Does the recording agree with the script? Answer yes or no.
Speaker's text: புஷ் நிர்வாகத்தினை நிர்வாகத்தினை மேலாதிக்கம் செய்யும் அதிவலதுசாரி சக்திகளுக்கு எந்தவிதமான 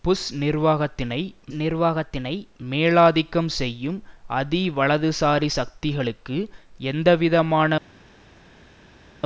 yes